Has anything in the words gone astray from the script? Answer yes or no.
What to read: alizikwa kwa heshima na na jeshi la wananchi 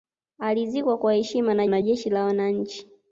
no